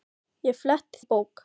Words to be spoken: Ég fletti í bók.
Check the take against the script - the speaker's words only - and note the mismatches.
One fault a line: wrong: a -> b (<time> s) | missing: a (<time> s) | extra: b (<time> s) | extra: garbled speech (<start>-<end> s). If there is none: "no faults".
no faults